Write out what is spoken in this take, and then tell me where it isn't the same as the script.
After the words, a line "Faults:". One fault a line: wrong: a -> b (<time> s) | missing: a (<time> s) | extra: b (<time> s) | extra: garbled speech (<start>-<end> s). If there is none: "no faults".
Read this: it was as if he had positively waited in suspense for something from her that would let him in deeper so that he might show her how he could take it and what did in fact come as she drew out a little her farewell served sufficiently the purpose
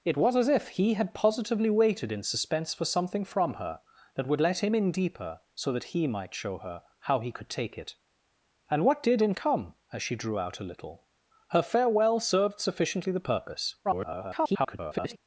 it was as if he had positively waited in suspense for something from her that would let him in deeper so that he might show her how he could take it and what did in come as she drew out a little her farewell served sufficiently the purpose [garbled]
Faults:
missing: fact (9.3 s)
extra: garbled speech (13.8-15.2 s)